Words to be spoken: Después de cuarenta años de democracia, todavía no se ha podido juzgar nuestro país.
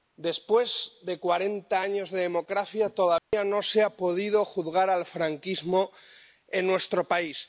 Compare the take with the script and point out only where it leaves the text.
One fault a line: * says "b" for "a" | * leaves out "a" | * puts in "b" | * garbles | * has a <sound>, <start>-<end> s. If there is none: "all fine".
* has a dropout, 3.2-3.3 s
* puts in "al franquismo en"